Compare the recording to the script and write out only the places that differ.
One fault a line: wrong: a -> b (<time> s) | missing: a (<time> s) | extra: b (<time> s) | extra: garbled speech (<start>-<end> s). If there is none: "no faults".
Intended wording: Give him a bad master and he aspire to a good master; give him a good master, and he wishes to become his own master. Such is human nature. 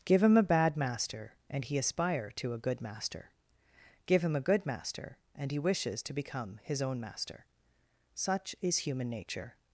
no faults